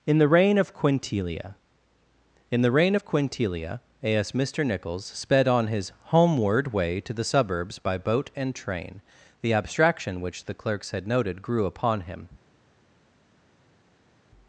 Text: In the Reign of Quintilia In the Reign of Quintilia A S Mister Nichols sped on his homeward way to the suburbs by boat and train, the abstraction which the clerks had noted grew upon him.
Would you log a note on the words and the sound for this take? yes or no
no